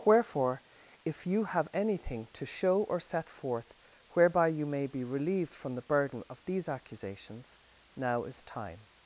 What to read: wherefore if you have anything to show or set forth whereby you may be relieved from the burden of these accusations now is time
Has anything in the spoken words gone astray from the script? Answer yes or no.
no